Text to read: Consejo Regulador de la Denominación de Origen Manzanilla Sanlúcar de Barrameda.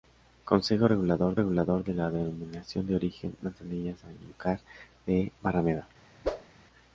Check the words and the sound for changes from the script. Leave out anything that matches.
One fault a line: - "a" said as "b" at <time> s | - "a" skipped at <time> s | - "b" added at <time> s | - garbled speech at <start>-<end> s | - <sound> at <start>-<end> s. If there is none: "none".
- "Regulador" added at 1.3 s
- whoosh at 6.2-6.5 s